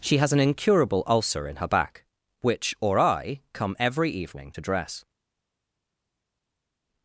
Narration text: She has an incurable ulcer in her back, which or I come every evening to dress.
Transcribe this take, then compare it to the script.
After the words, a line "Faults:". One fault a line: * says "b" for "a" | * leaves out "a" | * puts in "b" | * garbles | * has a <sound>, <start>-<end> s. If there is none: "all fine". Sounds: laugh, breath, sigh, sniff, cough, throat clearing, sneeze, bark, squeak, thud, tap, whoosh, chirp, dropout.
She has an incurable ulcer in her back, which or I come every evening to dress.
Faults:
all fine